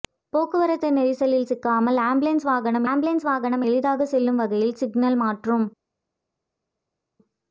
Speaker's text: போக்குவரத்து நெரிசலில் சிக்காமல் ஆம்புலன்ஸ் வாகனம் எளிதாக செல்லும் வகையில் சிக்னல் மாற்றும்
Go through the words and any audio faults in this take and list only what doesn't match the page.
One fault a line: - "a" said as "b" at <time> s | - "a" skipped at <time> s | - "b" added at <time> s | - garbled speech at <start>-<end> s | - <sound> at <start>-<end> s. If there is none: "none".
- "ஆம்புலன்ஸ் வாகனம்" added at 2.9 s